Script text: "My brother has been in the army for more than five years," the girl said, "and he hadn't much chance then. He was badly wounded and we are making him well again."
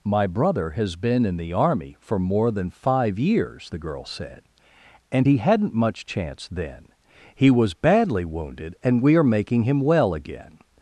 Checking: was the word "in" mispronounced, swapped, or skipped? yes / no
no